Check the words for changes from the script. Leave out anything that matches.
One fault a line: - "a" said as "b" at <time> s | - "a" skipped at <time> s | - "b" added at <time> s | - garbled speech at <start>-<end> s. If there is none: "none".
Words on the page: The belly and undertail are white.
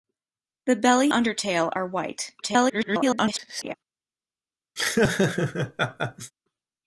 - "and" skipped at 1.1 s
- garbled speech at 2.4-3.7 s